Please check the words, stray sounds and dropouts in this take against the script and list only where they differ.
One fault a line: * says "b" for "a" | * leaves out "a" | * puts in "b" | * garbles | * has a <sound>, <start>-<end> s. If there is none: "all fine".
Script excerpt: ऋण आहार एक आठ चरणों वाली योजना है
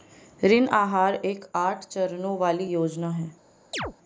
* has a chirp, 3.7-3.9 s